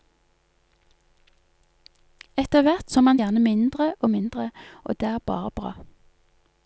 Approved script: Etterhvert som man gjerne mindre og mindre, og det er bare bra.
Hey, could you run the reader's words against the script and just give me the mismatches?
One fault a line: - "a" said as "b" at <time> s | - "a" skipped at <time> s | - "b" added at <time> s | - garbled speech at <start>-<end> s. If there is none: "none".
none